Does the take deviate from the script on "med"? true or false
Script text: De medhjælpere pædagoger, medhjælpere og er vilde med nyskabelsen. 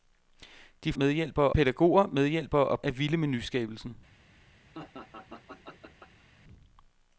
false